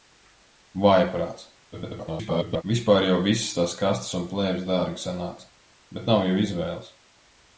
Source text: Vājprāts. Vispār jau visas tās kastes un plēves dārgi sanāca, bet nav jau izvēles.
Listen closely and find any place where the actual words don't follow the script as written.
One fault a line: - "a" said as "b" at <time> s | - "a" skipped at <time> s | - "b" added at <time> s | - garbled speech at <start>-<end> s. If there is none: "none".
- garbled speech at 1.7-2.6 s